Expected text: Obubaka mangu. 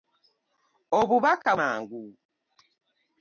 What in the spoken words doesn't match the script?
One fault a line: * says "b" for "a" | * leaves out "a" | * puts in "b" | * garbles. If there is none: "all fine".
all fine